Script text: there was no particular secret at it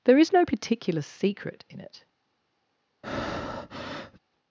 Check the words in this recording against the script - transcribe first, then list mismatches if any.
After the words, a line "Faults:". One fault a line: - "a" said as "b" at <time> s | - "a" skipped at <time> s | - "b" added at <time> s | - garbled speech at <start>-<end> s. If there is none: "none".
there is no particular secret in it
Faults:
- "was" said as "is" at 0.2 s
- "at" said as "in" at 1.7 s